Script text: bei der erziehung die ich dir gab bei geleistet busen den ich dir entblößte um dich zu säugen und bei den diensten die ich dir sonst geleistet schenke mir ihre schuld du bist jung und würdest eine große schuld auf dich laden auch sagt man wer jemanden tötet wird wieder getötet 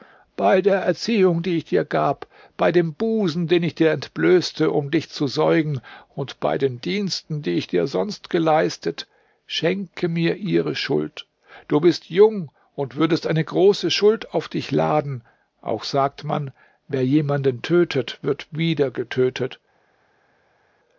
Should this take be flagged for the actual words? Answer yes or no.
yes